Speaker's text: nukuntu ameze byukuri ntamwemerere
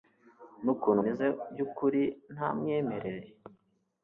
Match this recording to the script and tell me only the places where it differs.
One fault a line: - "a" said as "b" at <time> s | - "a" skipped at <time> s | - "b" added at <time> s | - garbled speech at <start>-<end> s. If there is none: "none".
none